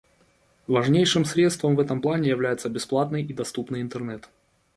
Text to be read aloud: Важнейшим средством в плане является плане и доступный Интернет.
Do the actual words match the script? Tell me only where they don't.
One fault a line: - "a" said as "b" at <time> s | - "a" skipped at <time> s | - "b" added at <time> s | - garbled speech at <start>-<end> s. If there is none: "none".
- "этом" added at 1.8 s
- "плане" said as "бесплатный" at 2.7 s